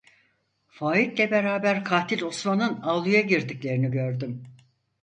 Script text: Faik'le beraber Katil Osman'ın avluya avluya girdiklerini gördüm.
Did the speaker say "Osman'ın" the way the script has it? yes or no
yes